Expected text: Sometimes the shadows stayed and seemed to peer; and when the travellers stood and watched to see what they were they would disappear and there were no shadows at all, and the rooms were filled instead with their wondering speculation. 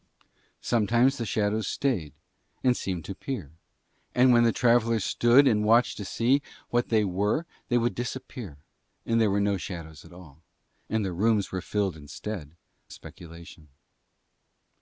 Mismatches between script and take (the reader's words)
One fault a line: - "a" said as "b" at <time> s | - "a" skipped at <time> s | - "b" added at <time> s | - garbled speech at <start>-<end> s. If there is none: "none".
- "with their wondering" skipped at 12.6 s